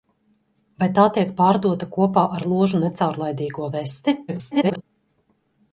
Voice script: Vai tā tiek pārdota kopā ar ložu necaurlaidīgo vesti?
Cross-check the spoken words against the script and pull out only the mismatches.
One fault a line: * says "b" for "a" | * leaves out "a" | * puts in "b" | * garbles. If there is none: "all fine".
* garbles